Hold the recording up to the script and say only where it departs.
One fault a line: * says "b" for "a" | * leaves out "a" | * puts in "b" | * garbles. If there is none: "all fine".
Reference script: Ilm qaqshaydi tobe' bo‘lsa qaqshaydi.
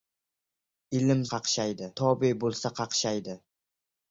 all fine